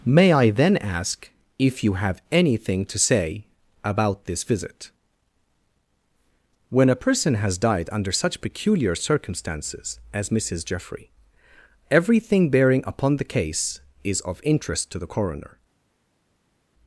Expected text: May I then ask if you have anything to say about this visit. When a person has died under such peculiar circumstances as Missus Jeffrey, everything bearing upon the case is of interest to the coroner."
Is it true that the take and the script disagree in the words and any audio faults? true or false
false